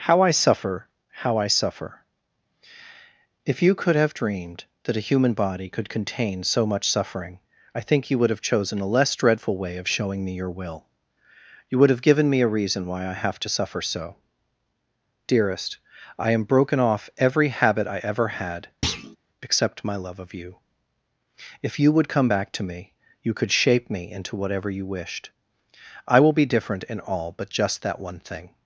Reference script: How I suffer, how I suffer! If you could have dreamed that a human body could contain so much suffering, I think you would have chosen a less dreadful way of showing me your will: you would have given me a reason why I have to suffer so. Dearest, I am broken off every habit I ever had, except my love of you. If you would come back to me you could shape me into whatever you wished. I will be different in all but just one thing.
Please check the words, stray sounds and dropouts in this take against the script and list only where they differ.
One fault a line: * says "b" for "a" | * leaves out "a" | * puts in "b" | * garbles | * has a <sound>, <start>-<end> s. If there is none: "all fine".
* has a thud, 18.8-19.2 s
* puts in "that"